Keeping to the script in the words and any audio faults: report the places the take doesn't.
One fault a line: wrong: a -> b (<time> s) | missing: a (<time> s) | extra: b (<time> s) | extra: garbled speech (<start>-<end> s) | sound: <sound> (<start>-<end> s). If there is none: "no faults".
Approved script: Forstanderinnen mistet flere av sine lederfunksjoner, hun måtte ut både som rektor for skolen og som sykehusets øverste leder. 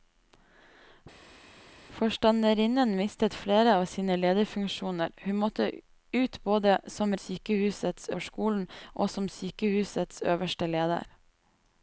wrong: rektor -> sykehusets (7.3 s)